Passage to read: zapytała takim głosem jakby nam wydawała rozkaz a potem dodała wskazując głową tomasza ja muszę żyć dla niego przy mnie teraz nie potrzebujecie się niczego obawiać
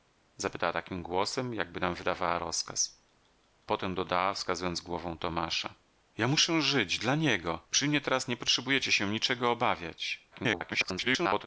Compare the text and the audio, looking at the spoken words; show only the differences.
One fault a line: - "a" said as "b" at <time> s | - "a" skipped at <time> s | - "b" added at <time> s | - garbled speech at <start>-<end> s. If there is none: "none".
- "a" skipped at 3.0 s
- garbled speech at 10.3-11.5 s